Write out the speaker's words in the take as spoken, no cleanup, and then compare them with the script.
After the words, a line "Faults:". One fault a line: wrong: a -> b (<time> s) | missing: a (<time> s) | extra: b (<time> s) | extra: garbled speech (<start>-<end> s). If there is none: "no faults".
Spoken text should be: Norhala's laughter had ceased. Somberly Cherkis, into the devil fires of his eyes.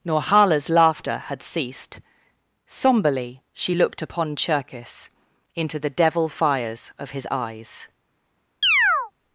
Norhala's laughter had ceased. Somberly she looked upon Cherkis, into the devil fires of his eyes.
Faults:
extra: she looked upon (3.5 s)